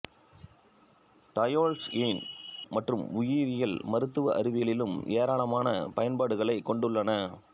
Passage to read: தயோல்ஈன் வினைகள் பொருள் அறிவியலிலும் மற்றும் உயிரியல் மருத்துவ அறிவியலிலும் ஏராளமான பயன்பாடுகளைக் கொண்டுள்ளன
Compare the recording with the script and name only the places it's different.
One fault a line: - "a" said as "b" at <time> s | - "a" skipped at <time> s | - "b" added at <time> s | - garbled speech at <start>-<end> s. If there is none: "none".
- "வினைகள் பொருள் அறிவியலிலும்" skipped at 2.2 s